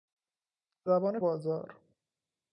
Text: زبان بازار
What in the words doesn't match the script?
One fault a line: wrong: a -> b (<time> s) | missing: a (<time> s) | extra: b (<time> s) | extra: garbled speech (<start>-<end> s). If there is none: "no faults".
no faults